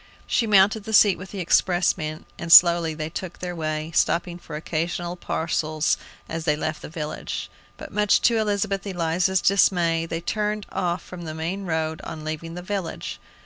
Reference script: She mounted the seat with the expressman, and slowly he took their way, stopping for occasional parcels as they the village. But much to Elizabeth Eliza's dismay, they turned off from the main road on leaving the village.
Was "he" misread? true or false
true